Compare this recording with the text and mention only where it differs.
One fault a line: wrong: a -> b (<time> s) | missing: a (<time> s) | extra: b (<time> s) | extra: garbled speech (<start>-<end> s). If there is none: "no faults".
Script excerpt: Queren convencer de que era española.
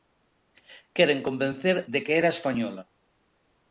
no faults